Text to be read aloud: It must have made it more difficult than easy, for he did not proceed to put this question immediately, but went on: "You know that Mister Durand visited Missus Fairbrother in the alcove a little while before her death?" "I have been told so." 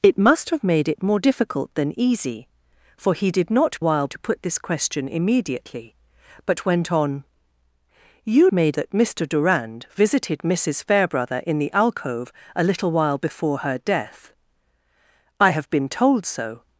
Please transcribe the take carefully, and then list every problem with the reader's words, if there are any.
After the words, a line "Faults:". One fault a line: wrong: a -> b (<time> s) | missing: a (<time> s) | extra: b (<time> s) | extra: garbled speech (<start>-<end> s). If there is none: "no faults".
It must have made it more difficult than easy, for he did not while to put this question immediately, but went on: "You made that Mister Durand visited Missus Fairbrother in the alcove a little while before her death?" "I have been told so."
Faults:
wrong: proceed -> while (3.8 s)
wrong: know -> made (8.5 s)